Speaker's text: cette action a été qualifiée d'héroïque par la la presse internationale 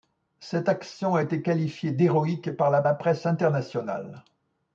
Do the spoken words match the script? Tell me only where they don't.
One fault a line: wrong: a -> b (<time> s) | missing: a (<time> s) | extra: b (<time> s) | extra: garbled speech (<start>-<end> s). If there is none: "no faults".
no faults